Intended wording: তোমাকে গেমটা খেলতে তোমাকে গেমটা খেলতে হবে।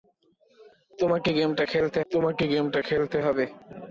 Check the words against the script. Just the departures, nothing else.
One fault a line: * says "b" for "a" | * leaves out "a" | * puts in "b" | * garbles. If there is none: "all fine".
all fine